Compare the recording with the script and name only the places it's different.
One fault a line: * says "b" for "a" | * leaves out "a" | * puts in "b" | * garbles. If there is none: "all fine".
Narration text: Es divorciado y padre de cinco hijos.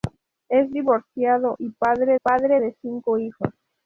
* puts in "padre"